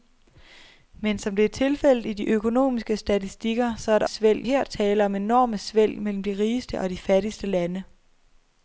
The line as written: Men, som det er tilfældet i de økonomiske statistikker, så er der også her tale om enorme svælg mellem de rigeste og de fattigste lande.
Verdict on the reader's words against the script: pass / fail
fail